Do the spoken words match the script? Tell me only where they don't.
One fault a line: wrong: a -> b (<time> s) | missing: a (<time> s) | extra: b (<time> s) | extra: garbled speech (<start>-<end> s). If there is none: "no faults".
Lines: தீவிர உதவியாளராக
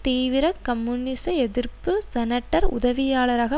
extra: கம்யூனிச எதிர்ப்பு செனட்டர் (0.6 s)